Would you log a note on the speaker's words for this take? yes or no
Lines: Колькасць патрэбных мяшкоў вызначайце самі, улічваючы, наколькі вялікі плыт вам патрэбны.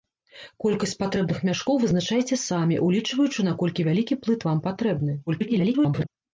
yes